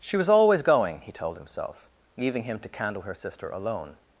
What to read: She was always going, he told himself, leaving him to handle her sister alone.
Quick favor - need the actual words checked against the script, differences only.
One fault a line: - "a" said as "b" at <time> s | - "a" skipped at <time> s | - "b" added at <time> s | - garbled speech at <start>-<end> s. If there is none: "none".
- "handle" said as "candle" at 2.7 s